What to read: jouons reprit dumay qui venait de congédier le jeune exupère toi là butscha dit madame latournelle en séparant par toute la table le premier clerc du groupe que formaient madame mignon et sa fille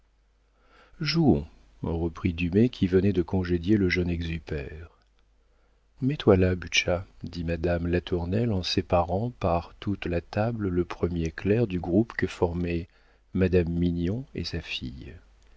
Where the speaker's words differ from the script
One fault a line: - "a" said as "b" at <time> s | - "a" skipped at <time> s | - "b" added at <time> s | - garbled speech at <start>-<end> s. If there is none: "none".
- "mets" added at 6.0 s